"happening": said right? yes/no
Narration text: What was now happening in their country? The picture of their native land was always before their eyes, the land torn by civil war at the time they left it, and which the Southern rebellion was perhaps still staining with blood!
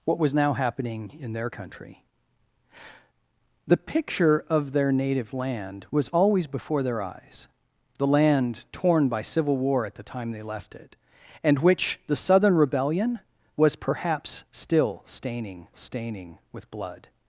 yes